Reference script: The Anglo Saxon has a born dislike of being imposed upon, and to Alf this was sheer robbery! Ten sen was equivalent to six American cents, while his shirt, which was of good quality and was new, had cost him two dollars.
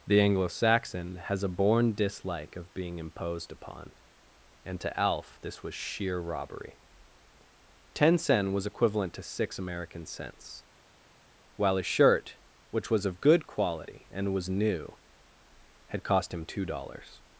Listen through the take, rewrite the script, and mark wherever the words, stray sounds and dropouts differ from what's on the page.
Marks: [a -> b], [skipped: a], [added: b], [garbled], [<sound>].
The Anglo Saxon has a born dislike of being imposed upon, and to Alf this was sheer robbery! Ten sen was equivalent to six American cents, while [his -> a] shirt, which was of good quality and was new, had cost him two dollars.